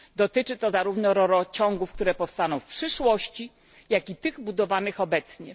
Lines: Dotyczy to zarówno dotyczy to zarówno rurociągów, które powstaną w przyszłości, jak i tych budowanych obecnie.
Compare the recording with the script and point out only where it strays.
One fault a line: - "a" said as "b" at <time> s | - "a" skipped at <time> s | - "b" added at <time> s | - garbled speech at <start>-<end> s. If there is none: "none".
- "dotyczy to zarówno" skipped at 1.1 s